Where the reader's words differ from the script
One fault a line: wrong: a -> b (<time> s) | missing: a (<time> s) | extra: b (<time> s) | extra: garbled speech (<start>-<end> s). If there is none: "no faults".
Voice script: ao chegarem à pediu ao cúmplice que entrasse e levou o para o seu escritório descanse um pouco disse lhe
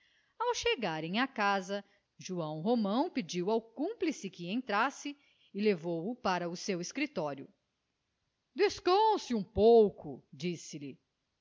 extra: casa joão romão (1.3 s)